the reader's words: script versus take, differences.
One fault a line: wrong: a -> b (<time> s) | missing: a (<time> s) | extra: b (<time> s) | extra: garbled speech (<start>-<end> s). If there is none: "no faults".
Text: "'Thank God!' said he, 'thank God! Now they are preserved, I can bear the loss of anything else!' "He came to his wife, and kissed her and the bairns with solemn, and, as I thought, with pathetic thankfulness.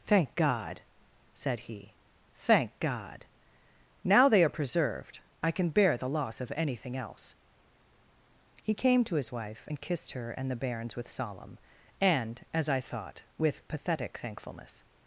no faults